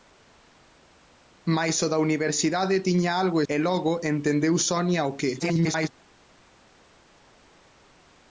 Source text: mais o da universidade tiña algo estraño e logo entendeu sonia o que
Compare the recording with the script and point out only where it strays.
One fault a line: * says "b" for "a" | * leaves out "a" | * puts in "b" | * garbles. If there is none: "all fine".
* leaves out "estraño"
* garbles